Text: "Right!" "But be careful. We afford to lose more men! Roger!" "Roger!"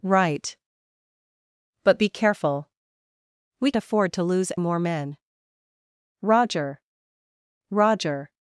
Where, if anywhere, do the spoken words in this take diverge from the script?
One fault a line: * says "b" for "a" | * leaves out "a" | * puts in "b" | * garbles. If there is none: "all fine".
all fine